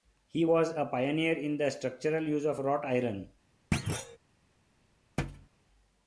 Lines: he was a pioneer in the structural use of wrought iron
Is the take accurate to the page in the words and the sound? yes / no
no